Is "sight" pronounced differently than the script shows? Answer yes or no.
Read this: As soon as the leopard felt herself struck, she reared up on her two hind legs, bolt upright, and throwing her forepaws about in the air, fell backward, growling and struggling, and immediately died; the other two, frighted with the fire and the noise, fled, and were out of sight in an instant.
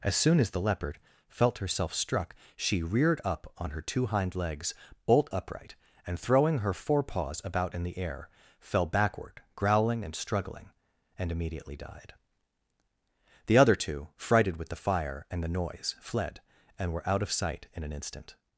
no